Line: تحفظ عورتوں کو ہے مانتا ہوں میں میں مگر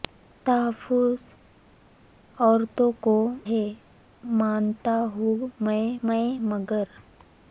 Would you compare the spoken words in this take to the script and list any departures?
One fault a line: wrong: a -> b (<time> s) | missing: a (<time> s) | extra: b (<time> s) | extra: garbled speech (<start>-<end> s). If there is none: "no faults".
no faults